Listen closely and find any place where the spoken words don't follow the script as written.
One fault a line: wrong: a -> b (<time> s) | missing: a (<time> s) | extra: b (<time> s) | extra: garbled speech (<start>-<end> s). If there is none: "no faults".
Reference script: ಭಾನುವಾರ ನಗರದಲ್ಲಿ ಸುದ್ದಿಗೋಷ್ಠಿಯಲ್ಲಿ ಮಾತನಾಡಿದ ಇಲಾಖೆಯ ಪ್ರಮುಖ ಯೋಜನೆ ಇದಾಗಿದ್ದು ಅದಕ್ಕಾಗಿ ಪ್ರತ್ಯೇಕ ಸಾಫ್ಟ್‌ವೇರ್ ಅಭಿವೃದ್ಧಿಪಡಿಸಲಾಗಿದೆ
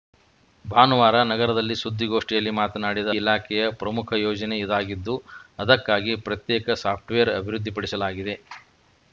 no faults